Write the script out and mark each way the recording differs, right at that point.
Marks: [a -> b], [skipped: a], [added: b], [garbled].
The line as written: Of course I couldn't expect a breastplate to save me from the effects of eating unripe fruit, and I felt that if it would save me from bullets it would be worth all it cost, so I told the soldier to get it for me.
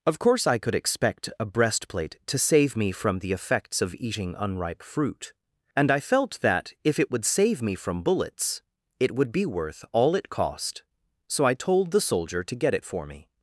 Of course I [couldn't -> could] expect a breastplate to save me from the effects of eating unripe fruit, and I felt that if it would save me from bullets it would be worth all it cost, so I told the soldier to get it for me.